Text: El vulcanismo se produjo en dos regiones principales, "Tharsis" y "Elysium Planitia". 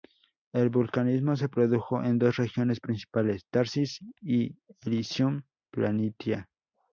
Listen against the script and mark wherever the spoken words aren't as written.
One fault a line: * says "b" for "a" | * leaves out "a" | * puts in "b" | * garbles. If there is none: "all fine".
all fine